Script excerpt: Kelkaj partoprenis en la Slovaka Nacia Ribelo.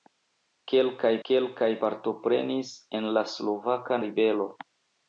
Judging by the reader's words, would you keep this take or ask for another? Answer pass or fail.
fail